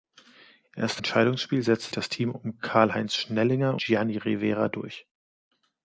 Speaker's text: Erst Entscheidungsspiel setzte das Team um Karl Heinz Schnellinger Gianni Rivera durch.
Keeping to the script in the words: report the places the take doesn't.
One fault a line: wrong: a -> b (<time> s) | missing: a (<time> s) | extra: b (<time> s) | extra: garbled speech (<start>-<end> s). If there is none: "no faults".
no faults